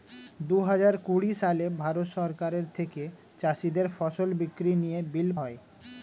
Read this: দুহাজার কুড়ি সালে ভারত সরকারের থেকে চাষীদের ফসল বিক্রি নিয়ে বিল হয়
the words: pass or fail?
pass